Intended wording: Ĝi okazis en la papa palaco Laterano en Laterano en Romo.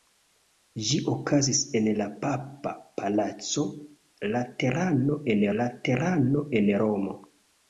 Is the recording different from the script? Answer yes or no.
no